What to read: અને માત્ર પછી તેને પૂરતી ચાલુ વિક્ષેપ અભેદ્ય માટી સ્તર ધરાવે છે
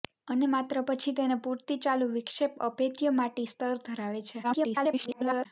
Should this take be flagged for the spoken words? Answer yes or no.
yes